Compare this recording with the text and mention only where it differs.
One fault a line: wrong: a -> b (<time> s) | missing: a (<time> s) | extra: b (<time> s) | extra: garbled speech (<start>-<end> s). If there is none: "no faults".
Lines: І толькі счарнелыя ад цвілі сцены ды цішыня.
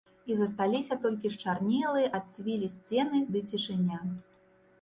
extra: засталіся (0.4 s)